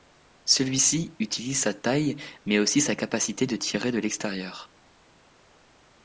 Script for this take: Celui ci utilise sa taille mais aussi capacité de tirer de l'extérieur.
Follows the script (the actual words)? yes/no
no